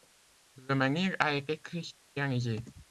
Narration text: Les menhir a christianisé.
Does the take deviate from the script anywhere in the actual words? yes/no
yes